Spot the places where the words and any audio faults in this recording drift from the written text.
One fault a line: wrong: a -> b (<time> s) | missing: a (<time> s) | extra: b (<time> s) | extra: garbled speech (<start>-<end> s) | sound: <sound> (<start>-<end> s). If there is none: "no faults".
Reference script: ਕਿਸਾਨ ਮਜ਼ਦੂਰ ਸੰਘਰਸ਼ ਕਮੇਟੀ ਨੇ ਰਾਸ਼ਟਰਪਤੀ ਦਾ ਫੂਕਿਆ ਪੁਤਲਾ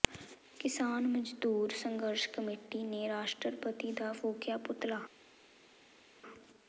no faults